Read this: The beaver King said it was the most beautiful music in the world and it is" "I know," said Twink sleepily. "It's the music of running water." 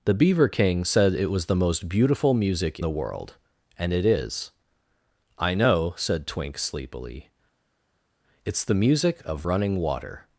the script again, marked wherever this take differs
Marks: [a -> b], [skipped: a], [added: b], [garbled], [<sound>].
The beaver King said it was the most beautiful music [skipped: in] the world and it is" "I know," said Twink sleepily. "It's the music of running water."